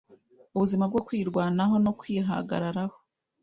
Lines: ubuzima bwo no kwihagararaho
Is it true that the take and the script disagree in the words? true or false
true